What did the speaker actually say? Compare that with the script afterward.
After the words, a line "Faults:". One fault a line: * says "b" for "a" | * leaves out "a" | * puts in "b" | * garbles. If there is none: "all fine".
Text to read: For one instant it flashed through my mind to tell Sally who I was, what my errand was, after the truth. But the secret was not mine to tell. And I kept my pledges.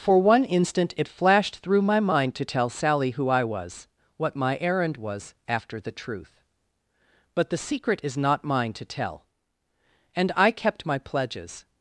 For one instant it flashed through my mind to tell Sally who I was, what my errand was, after the truth. But the secret is not mine to tell. And I kept my pledges.
Faults:
* says "is" for "was"